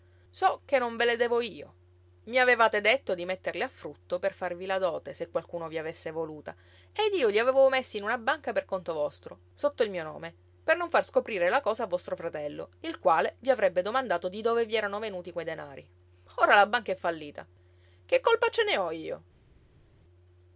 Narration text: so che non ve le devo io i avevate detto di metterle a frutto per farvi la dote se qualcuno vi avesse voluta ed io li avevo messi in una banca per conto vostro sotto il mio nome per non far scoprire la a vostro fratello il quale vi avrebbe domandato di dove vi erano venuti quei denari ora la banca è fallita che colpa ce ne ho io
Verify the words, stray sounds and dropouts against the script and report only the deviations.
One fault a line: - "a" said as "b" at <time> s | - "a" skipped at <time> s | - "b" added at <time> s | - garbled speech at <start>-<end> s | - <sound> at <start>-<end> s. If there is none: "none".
- "cosa" added at 11.6 s